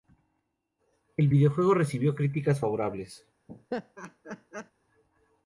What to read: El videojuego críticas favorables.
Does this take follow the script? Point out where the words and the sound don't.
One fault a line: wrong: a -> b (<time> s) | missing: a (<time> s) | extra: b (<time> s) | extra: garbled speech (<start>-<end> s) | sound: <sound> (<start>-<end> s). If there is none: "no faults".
extra: recibió (1.7 s)
sound: laugh (3.5-4.7 s)